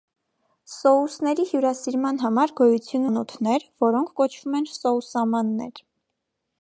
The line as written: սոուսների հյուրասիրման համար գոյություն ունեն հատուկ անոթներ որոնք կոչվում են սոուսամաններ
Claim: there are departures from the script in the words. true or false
true